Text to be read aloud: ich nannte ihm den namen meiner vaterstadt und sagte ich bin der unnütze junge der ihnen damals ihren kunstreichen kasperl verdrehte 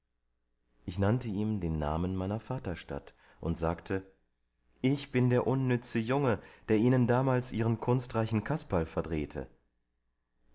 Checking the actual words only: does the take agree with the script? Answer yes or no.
yes